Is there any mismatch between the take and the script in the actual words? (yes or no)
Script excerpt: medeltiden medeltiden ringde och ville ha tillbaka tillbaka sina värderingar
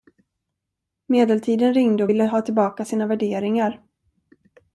yes